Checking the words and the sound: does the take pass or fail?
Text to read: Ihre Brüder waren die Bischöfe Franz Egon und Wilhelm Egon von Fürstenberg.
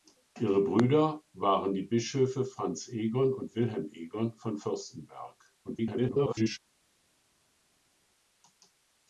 fail